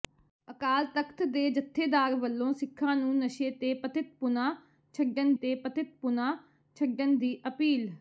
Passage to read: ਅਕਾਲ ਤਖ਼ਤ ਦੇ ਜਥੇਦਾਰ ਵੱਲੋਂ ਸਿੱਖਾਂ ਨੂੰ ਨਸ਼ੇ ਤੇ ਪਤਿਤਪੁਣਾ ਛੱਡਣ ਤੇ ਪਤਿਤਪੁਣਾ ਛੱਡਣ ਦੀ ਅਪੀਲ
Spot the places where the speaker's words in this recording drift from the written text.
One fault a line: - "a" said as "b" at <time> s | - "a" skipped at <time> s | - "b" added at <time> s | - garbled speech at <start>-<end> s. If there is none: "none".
none